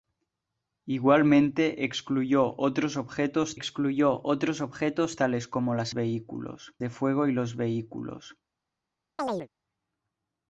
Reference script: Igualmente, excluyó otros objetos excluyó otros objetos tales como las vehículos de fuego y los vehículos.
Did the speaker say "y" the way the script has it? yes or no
yes